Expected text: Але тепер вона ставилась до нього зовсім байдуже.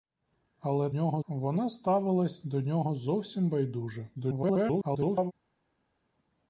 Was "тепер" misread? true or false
true